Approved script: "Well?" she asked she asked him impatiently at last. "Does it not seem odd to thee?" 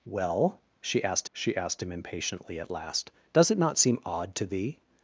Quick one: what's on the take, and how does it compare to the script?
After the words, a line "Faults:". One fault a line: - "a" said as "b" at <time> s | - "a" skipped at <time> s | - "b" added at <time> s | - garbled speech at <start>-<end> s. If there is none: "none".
"Well?" she asked she asked him impatiently at last. "Does it not seem odd to thee?"
Faults:
none